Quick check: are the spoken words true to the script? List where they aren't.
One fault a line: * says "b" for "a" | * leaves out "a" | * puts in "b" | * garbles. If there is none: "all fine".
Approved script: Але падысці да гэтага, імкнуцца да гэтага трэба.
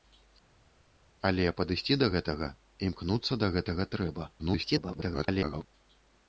* garbles